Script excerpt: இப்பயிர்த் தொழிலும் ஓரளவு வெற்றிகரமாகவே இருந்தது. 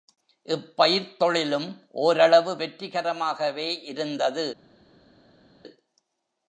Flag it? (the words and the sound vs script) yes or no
no